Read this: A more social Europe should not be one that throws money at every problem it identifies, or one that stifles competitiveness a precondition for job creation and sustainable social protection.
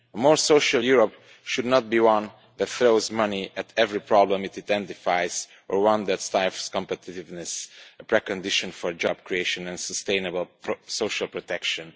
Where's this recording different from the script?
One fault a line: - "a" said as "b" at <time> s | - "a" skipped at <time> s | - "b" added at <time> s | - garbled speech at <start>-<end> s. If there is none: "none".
none